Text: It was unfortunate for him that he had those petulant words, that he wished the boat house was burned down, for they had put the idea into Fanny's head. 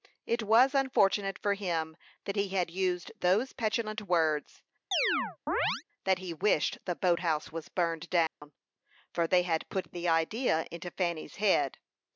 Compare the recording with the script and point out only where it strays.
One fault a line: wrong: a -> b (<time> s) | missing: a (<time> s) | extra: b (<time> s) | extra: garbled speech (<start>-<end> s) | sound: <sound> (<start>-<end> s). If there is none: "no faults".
extra: used (2.7 s)
sound: chirp (4.9-5.8 s)
sound: dropout (8.3-8.4 s)